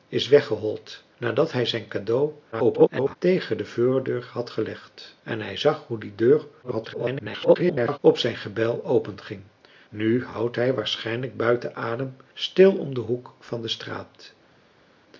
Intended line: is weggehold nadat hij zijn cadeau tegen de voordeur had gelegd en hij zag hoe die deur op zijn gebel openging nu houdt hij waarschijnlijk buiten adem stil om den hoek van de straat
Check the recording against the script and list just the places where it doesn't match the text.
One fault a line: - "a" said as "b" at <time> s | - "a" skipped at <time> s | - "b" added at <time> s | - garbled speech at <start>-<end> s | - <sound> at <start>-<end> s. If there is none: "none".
- garbled speech at 2.5-3.2 s
- garbled speech at 6.6-8.0 s